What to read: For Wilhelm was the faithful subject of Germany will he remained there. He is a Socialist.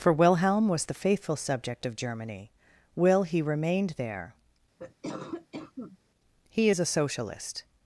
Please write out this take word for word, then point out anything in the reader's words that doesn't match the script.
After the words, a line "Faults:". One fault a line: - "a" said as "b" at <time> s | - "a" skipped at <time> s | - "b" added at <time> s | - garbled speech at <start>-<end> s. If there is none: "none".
For Wilhelm was the faithful subject of Germany will he remained there. He is a Socialist.
Faults:
none